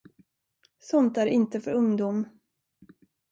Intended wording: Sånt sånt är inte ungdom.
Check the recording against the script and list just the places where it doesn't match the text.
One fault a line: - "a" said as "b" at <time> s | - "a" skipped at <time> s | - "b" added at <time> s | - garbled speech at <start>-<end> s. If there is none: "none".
- "sånt" skipped at 1.2 s
- "för" added at 1.6 s